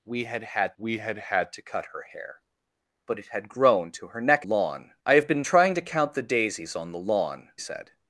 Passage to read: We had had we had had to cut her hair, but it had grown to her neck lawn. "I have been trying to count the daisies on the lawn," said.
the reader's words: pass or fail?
pass